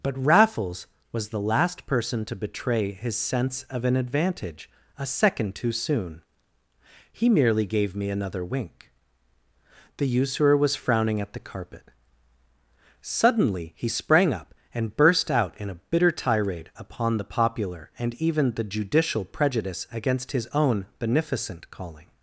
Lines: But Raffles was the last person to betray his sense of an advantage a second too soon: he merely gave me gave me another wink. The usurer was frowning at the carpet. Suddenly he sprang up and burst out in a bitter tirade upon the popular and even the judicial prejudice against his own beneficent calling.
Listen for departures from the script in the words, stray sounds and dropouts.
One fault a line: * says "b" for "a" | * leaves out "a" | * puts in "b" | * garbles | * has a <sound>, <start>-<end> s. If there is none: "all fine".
* leaves out "gave me"